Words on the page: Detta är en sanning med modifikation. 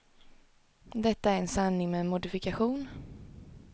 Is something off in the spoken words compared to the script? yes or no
no